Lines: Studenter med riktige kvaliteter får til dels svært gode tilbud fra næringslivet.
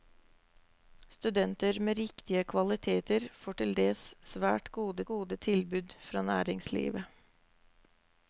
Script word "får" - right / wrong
right